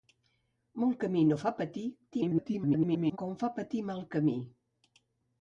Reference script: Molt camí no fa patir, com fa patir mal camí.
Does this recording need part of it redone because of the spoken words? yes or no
yes